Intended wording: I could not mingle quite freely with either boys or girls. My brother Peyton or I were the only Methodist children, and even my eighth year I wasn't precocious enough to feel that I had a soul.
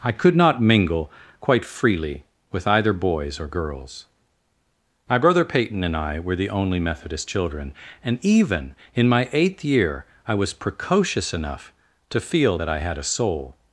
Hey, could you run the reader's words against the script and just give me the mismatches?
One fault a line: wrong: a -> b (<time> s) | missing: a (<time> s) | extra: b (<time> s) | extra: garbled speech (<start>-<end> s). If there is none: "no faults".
wrong: or -> and (5.8 s)
extra: in (8.9 s)
wrong: wasn't -> was (10.3 s)